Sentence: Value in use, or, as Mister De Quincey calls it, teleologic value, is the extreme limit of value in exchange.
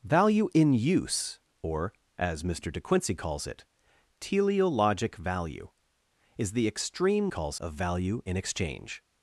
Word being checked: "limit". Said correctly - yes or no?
no